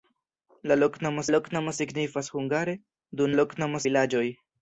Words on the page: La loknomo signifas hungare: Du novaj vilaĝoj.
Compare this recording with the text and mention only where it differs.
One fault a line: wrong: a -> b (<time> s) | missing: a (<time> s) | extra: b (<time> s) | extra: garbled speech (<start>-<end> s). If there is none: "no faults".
extra: loknomo (1.3 s)
wrong: novaj -> loknomo (3.3 s)